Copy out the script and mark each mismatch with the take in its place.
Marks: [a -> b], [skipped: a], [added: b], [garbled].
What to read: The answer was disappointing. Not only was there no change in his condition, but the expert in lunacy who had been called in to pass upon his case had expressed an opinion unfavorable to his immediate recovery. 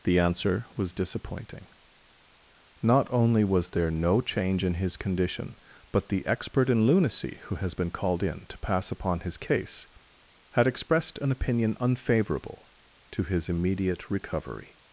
The answer was disappointing. Not only was there no change in his condition, but the expert in lunacy who [had -> has] been called in to pass upon his case had expressed an opinion unfavorable to his immediate recovery.